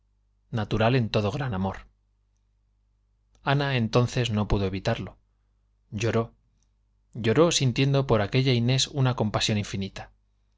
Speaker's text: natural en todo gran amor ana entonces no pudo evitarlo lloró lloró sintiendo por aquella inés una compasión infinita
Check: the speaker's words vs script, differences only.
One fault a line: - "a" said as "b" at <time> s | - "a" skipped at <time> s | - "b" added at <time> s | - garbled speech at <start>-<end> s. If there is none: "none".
none